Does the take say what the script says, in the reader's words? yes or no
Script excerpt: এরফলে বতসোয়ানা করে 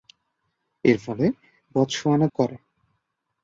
yes